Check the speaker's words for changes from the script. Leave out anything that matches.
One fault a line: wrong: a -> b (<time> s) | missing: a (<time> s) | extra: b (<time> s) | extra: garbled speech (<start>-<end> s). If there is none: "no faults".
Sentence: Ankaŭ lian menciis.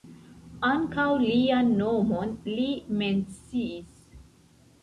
extra: nomon li (1.8 s)